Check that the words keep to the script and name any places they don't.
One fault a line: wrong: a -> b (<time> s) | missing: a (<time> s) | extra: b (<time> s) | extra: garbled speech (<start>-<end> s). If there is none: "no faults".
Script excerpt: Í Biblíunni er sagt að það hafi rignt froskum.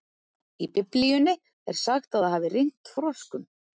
no faults